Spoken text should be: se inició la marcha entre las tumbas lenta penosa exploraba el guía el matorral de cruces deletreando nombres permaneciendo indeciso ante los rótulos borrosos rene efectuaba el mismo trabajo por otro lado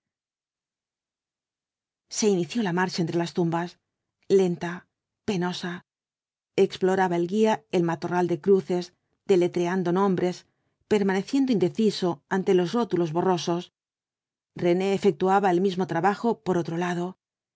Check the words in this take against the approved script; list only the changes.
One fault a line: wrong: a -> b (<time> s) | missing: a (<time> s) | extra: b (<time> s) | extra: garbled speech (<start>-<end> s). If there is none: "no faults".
no faults